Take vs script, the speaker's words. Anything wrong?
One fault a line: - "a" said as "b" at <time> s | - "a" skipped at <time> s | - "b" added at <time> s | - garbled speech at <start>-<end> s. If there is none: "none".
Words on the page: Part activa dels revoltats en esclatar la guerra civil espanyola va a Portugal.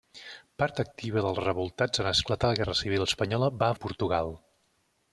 none